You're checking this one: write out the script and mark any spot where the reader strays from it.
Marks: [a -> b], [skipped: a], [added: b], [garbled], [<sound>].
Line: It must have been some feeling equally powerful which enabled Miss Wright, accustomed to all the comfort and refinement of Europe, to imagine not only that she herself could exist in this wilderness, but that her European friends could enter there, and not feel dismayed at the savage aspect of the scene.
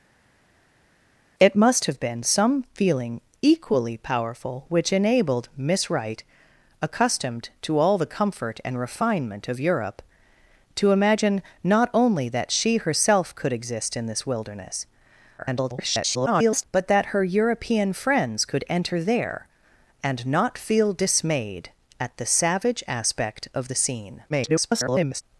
It must have been some feeling equally powerful which enabled Miss Wright, accustomed to all the comfort and refinement of Europe, to imagine not only that she herself could exist in this wilderness, [garbled] but that her European friends could enter there, and not feel dismayed at the savage aspect of the scene. [garbled]